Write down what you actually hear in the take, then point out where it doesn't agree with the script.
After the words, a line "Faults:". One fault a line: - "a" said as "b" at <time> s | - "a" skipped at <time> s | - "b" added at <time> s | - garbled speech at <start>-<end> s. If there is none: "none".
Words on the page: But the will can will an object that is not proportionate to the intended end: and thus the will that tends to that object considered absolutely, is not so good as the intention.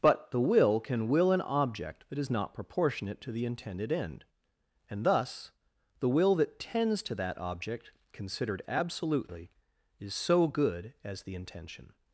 But the will can will an object that is not proportionate to the intended end: and thus the will that tends to that object considered absolutely, is so good as the intention.
Faults:
- "not" skipped at 10.2 s